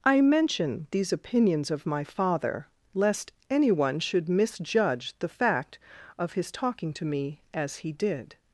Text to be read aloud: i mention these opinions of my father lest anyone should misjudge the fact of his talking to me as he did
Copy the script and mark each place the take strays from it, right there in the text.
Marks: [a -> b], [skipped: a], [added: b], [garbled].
i mention these opinions of my father lest anyone should misjudge the fact of his talking to me as he did